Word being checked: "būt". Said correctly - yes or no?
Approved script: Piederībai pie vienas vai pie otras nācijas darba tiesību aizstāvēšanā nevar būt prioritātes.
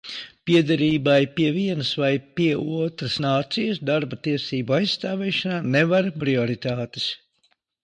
no